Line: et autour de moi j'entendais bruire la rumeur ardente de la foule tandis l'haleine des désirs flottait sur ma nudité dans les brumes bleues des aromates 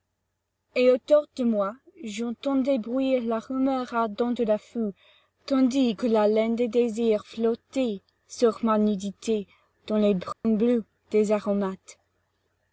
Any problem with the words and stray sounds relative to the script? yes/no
yes